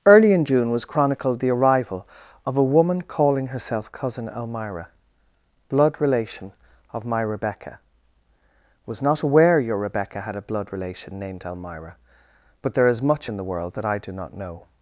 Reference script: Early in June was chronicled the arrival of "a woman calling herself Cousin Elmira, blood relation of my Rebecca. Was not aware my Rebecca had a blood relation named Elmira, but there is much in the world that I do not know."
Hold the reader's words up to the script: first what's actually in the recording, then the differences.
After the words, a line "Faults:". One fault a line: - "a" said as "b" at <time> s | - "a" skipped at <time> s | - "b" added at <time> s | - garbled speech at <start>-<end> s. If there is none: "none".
Early in June was chronicled the arrival of "a woman calling herself Cousin Elmira, blood relation of my Rebecca. Was not aware your Rebecca had a blood relation named Elmira, but there is much in the world that I do not know."
Faults:
- "my" said as "your" at 9.6 s